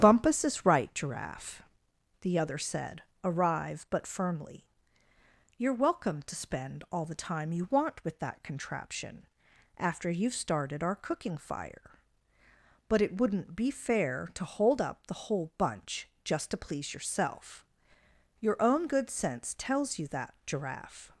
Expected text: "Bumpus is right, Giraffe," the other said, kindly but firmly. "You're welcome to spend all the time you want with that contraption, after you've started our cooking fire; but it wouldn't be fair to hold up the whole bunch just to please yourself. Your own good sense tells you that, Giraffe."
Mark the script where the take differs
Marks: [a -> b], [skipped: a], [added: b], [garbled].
"Bumpus is right, Giraffe," the other said, [kindly -> arrive] but firmly. "You're welcome to spend all the time you want with that contraption, after you've started our cooking fire; but it wouldn't be fair to hold up the whole bunch just to please yourself. Your own good sense tells you that, Giraffe."